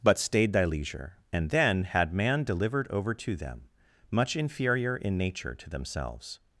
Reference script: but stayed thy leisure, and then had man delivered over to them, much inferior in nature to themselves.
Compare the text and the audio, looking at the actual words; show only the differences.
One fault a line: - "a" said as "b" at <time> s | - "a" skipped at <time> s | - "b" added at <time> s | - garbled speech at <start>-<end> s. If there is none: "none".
none